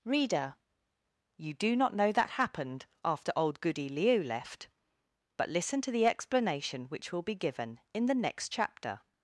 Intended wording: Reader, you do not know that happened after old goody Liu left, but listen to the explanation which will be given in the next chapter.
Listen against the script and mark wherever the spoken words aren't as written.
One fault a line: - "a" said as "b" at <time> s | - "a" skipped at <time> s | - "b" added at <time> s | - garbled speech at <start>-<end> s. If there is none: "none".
none